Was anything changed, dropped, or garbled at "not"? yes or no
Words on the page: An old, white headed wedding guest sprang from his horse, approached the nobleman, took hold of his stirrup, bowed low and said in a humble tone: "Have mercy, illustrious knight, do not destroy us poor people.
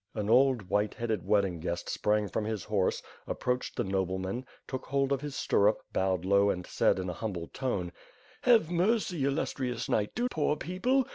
yes